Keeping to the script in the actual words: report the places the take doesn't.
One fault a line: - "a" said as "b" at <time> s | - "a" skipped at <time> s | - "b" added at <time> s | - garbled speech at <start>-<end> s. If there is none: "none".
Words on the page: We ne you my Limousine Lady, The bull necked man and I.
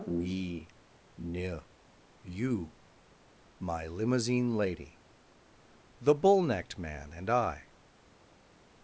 none